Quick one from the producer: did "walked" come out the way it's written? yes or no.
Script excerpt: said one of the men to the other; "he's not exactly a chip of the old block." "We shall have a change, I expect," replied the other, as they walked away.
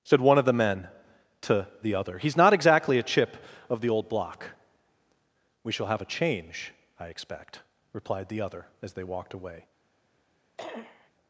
yes